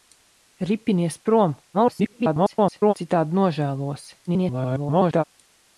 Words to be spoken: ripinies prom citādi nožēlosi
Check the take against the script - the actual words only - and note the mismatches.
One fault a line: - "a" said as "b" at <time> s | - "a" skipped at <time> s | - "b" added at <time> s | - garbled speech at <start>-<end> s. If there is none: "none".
- garbled speech at 1.7-2.9 s
- garbled speech at 4.3-5.2 s